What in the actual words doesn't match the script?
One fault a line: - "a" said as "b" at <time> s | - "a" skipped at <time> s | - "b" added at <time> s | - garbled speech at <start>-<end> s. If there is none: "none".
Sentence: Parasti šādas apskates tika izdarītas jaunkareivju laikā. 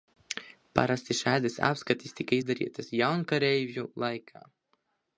none